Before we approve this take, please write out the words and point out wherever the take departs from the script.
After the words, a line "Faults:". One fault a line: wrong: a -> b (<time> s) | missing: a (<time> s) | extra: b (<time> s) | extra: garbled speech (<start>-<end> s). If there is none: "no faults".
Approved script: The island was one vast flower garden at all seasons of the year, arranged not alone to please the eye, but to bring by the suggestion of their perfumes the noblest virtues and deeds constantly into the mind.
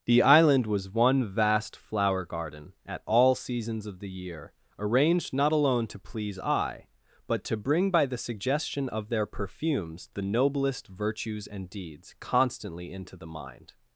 The island was one vast flower garden at all seasons of the year, arranged not alone to please eye, but to bring by the suggestion of their perfumes the noblest virtues and deeds constantly into the mind.
Faults:
missing: the (6.4 s)